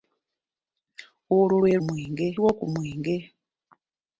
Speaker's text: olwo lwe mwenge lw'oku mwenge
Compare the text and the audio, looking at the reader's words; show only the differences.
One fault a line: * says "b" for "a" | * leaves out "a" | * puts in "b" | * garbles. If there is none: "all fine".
all fine